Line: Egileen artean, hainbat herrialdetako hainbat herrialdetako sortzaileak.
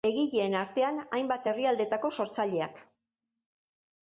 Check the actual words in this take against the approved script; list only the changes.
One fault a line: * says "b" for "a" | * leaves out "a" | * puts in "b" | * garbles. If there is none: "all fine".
* leaves out "hainbat herrialdetako"